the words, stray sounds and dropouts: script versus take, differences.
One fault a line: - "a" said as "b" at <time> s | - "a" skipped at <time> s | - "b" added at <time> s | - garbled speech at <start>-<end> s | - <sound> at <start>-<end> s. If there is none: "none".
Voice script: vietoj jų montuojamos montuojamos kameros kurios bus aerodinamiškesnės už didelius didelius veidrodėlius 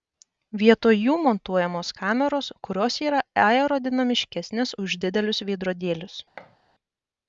- "montuojamos" skipped at 1.9 s
- "bus" said as "yra" at 3.1 s
- "didelius" skipped at 5.4 s
- thud at 6.4-6.6 s